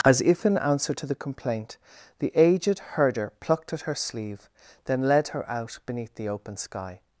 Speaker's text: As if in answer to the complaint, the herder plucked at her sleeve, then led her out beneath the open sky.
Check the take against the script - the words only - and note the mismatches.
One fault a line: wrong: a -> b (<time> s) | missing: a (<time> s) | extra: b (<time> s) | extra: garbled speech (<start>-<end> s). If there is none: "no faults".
extra: aged (2.3 s)